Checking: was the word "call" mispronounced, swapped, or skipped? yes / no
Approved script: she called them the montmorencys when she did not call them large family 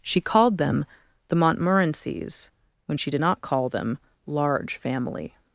no